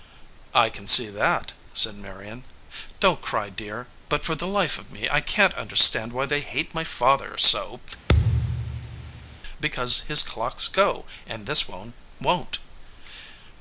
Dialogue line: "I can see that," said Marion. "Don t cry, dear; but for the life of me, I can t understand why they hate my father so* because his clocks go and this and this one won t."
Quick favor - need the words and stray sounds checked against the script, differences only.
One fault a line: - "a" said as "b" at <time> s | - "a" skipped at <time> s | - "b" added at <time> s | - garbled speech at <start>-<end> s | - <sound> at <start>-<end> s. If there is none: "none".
- thud at 8.1-9.4 s
- "and this" skipped at 11.7 s